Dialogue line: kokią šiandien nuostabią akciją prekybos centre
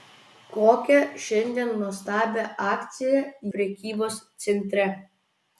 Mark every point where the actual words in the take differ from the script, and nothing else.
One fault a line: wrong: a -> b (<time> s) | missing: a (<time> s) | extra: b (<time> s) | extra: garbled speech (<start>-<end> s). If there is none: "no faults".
no faults